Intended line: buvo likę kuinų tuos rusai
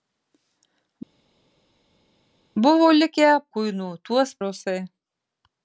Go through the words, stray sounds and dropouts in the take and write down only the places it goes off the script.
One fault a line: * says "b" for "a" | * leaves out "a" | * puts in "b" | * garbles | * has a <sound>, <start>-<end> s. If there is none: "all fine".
all fine